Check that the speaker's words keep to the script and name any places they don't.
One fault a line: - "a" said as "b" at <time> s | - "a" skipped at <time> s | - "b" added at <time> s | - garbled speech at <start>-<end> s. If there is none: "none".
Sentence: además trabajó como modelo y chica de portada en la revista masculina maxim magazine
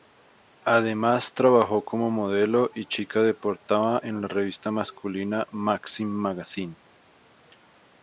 none